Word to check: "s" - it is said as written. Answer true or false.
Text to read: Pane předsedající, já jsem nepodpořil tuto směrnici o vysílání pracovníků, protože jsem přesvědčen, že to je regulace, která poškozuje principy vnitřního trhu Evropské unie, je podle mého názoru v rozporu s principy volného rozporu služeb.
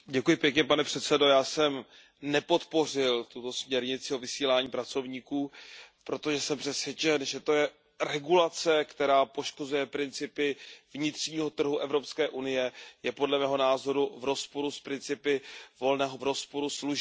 true